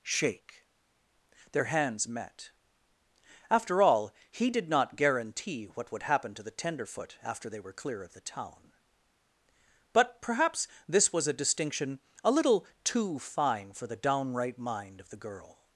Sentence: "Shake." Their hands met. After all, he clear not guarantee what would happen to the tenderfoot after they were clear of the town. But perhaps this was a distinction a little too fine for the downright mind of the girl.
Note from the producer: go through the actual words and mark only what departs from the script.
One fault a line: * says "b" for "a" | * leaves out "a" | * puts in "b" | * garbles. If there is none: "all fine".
* says "did" for "clear"